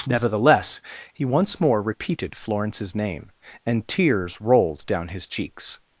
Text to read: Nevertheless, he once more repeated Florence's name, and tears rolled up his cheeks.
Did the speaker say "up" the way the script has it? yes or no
no